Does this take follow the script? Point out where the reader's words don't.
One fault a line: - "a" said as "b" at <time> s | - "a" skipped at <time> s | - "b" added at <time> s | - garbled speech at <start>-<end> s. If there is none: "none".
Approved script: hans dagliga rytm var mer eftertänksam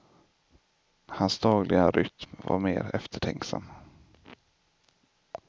none